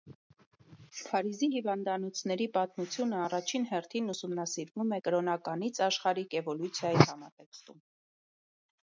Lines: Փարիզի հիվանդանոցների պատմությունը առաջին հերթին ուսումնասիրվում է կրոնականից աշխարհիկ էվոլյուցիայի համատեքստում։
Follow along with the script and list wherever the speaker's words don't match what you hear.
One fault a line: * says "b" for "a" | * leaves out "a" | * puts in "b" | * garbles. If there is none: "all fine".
all fine